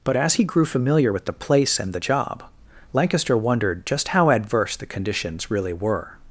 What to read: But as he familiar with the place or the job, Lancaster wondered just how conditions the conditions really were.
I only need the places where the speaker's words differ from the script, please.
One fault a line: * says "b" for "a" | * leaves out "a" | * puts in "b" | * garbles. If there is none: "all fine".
* puts in "grew"
* says "and" for "or"
* says "adverse" for "conditions"